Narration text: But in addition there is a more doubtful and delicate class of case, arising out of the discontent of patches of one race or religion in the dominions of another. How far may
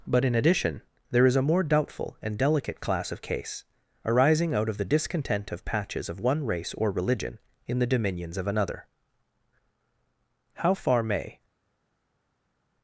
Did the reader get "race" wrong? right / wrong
right